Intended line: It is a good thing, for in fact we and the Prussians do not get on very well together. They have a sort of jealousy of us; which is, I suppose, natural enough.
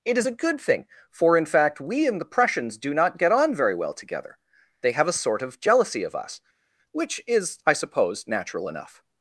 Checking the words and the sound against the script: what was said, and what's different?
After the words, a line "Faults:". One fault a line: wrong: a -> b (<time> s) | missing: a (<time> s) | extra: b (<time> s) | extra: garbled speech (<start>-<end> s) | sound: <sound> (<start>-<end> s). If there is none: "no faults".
It is a good thing, for in fact we and the Prussians do not get on very well together. They have a sort of jealousy of us; which is, I suppose, natural enough.
Faults:
no faults